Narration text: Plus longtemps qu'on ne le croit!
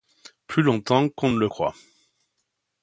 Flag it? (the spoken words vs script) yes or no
no